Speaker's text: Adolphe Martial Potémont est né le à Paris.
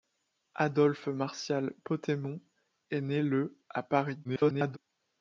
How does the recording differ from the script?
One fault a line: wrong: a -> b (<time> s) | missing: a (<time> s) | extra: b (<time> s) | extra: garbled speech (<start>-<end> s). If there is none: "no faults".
extra: garbled speech (4.2-4.8 s)